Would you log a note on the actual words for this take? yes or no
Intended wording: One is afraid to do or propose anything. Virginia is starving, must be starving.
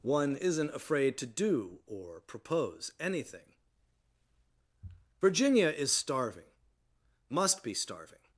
yes